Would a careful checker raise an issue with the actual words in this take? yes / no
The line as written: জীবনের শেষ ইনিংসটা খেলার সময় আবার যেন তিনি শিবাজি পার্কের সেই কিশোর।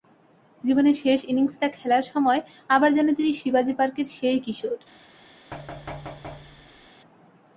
no